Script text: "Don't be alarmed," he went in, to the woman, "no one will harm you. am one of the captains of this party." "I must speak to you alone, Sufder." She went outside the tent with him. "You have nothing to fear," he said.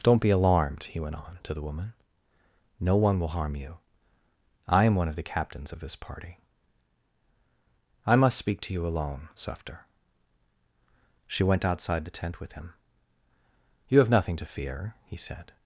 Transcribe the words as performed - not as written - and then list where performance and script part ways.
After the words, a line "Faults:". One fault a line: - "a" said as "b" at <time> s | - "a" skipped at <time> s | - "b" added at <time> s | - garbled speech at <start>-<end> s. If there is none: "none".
"Don't be alarmed," he went on, to the woman, "no one will harm you. I am one of the captains of this party." "I must speak to you alone, Sufder." She went outside the tent with him. "You have nothing to fear," he said.
Faults:
- "in" said as "on" at 1.1 s
- "I" added at 4.7 s